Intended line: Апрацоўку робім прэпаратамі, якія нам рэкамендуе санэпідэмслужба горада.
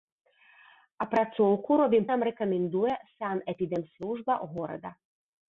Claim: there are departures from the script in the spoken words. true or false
true